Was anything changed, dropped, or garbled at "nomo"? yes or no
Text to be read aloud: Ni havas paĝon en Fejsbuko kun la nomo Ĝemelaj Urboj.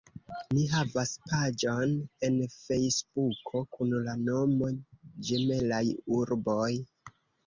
no